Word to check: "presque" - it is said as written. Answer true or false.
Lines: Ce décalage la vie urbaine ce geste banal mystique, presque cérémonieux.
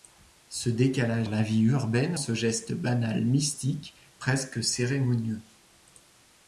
true